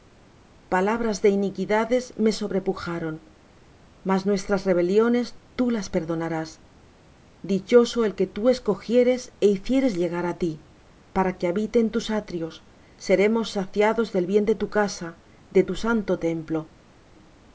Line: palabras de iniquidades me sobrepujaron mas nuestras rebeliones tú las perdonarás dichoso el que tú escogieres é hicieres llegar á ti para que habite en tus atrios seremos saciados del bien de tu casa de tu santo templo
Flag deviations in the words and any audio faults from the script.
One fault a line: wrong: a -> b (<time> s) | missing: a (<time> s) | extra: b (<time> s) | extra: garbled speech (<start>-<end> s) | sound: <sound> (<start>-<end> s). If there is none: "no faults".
no faults